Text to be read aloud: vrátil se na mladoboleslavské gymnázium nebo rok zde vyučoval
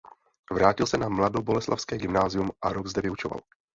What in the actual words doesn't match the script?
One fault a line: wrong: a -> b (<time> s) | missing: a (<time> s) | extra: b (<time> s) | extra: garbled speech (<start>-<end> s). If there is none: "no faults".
wrong: nebo -> a (2.6 s)